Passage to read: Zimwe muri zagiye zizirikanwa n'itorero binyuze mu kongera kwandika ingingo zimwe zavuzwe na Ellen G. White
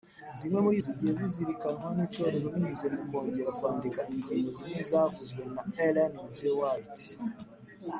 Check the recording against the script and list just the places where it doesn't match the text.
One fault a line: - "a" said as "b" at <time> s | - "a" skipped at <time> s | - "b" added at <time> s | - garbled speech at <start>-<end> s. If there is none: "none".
none